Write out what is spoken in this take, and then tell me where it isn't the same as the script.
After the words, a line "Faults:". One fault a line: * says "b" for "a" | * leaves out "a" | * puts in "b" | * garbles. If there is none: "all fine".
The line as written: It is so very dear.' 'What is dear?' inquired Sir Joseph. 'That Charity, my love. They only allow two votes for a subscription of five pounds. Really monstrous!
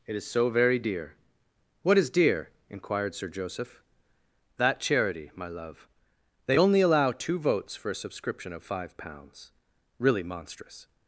It is so very dear.' 'What is dear?' inquired Sir Joseph. 'That Charity, my love. They only allow two votes for a subscription of five pounds. Really monstrous!
Faults:
all fine